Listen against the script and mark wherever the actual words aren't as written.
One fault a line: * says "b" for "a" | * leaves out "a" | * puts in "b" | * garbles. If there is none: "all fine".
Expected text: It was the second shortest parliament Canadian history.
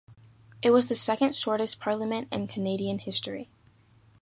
* puts in "in"